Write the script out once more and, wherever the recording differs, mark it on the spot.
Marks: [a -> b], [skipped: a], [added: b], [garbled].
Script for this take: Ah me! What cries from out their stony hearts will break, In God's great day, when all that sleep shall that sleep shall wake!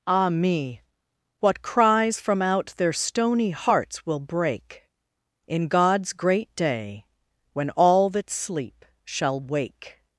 Ah me! What cries from out their stony hearts will break, In God's great day, when all that sleep shall [skipped: that sleep shall] wake!